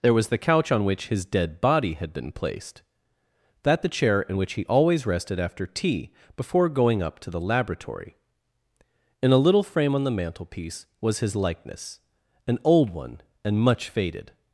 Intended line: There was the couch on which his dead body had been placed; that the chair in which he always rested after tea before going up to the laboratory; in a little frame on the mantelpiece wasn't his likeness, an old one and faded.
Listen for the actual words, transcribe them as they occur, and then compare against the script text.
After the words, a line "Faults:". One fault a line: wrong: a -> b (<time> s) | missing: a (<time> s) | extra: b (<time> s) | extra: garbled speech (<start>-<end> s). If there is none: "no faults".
There was the couch on which his dead body had been placed; that the chair in which he always rested after tea before going up to the laboratory; in a little frame on the mantelpiece was his likeness, an old one and much faded.
Faults:
wrong: wasn't -> was (11.0 s)
extra: much (13.6 s)